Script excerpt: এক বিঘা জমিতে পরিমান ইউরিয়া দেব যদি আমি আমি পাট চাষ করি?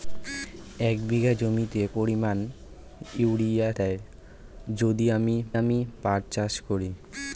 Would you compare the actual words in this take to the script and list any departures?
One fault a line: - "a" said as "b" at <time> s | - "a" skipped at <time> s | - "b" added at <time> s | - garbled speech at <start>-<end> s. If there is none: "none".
none